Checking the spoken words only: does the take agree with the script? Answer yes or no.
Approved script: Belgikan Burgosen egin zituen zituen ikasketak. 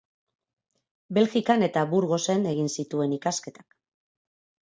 no